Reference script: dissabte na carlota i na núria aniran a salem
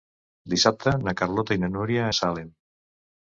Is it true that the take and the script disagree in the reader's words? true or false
true